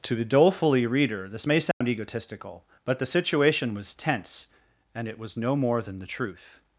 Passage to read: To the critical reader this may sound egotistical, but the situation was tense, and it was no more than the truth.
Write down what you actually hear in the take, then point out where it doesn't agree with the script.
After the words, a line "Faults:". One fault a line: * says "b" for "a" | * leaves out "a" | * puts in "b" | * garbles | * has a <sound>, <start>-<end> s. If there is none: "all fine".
To the dolefully reader this may sound egotistical, but the situation was tense, and it was no more than the truth.
Faults:
* says "dolefully" for "critical"
* has a dropout, 1.7-1.8 s